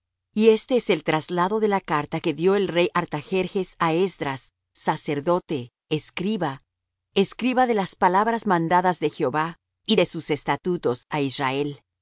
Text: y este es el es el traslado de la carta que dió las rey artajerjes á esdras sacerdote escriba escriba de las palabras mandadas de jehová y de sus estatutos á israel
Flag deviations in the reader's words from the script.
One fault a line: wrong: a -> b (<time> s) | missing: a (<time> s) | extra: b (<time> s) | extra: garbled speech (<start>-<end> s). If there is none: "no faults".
missing: es el (1.0 s)
wrong: las -> el (2.6 s)